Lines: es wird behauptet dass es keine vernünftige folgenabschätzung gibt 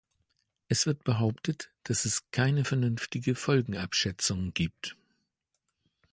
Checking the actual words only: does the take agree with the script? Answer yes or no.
yes